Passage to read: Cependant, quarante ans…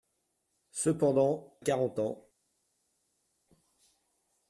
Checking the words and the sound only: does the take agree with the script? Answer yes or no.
yes